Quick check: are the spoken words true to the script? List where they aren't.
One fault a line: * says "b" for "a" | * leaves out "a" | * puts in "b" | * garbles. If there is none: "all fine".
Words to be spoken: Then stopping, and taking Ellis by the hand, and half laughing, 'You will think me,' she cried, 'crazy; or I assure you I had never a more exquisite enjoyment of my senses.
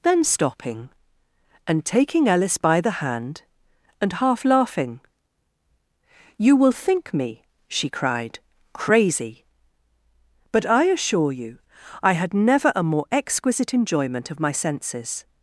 * says "but" for "or"